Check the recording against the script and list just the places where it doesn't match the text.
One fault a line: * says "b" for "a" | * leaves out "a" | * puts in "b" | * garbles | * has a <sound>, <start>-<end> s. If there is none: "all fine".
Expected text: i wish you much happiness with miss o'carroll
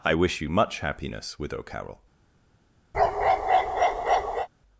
* leaves out "miss"
* has a bark, 2.9-4.5 s